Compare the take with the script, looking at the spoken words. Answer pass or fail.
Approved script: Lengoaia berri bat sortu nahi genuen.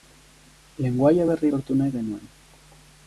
fail